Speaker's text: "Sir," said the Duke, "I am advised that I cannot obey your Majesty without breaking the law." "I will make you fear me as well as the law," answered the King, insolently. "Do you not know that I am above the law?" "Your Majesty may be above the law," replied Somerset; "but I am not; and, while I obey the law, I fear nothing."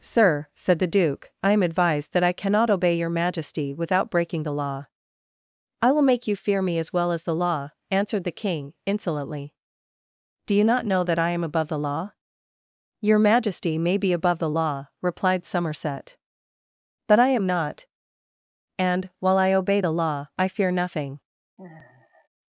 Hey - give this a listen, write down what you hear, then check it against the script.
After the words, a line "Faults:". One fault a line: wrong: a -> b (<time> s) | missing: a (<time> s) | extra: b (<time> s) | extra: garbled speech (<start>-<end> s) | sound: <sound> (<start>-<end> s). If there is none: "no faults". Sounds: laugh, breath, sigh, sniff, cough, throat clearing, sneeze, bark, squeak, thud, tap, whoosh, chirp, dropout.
"Sir," said the Duke, "I am advised that I cannot obey your Majesty without breaking the law." "I will make you fear me as well as the law," answered the King, insolently. "Do you not know that I am above the law?" "Your Majesty may be above the law," replied Somerset; "but I am not; and, while I obey the law, I fear nothing."
Faults:
sound: sigh (21.6-22.3 s)